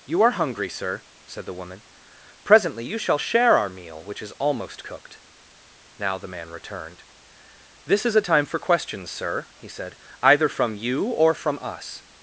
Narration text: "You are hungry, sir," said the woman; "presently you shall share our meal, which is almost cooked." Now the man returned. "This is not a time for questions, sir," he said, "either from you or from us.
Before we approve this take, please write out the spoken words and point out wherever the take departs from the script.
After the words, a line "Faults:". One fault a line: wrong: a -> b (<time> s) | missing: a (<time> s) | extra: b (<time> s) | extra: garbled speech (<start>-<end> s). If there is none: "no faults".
"You are hungry, sir," said the woman; "presently you shall share our meal, which is almost cooked." Now the man returned. "This is a time for questions, sir," he said, "either from you or from us.
Faults:
missing: not (8.1 s)